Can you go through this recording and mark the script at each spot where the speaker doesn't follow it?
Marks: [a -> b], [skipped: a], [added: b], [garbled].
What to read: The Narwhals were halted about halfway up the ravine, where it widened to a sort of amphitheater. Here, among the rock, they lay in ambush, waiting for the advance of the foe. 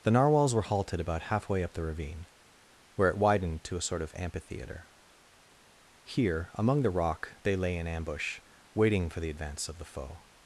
The Narwhals were halted about halfway up the ravine, where it widened to a sort of amphitheater. Here, among the rock, they lay in ambush, waiting for the advance of the foe.